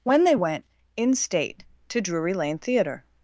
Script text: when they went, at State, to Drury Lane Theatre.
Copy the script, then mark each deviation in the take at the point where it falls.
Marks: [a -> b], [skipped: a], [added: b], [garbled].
when they went, [at -> in] State, to Drury Lane Theatre.